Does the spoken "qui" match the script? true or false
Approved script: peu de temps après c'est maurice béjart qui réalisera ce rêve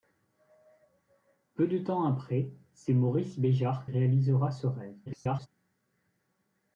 false